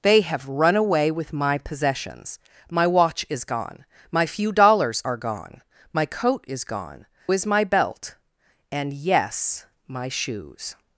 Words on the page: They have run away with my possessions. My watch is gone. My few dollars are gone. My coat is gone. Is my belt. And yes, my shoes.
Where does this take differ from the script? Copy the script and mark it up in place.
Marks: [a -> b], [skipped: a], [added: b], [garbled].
They have run away with my possessions. My watch is gone. My few dollars are gone. My coat is gone. Is my belt. And yes, my shoes.